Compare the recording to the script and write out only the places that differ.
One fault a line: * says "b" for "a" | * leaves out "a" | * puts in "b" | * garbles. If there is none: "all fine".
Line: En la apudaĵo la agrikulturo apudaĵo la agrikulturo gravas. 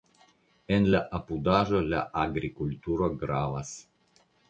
* leaves out "apudaĵo la agrikulturo"